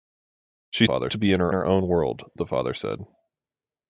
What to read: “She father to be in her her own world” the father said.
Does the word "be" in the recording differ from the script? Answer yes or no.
no